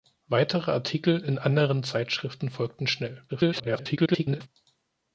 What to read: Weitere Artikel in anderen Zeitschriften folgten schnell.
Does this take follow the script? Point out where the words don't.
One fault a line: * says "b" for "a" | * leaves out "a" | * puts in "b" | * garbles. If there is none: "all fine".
* garbles